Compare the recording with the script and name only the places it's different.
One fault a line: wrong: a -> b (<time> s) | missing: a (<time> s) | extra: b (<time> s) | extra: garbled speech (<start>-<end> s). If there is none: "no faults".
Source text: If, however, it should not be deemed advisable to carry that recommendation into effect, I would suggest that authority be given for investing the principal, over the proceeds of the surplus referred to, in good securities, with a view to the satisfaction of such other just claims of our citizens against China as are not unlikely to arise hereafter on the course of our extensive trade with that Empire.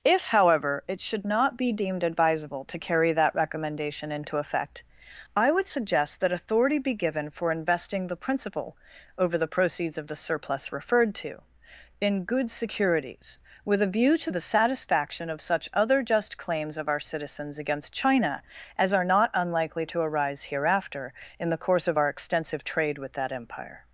wrong: on -> in (21.4 s)